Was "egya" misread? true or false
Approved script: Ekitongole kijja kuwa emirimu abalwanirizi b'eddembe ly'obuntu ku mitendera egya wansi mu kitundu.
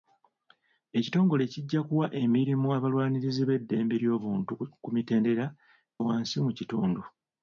true